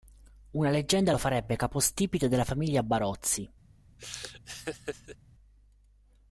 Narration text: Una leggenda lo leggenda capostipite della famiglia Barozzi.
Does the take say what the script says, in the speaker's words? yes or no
no